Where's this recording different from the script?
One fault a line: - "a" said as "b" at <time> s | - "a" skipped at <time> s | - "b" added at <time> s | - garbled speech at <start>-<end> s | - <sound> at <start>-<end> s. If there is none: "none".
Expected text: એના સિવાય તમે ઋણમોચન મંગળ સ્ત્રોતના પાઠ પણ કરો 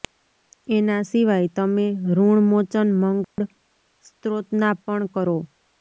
- dropout at 3.2-3.4 s
- "પાઠ" skipped at 4.8 s